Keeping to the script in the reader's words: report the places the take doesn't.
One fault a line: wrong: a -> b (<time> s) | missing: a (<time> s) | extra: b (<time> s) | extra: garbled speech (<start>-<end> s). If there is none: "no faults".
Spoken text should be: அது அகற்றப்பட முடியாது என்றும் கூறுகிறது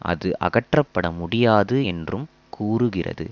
no faults